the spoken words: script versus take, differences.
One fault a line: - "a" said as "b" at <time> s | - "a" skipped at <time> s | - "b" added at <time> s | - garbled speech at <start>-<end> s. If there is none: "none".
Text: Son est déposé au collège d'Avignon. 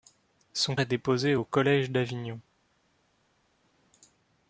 none